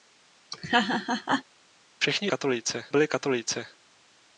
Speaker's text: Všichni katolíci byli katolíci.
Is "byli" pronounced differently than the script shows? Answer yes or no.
no